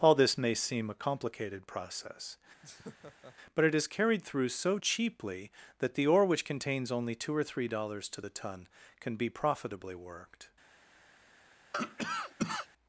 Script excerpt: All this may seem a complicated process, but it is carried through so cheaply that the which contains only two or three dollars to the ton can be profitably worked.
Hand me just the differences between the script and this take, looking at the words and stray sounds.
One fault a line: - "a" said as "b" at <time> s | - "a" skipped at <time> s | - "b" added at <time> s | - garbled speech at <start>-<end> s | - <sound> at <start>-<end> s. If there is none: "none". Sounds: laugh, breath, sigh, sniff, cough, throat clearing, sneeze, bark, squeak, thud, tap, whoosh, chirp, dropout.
- laugh at 2.6-3.4 s
- "ore" added at 6.1 s
- cough at 11.7-12.7 s